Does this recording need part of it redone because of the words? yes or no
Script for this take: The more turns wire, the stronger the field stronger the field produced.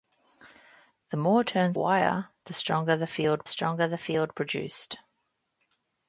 no